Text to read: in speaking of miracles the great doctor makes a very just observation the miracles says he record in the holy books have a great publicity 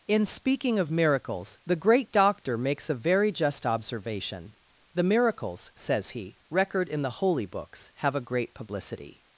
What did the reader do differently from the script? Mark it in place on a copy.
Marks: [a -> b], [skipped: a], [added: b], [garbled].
in speaking of miracles the great doctor makes a very just observation the miracles says he record in the holy books have a great publicity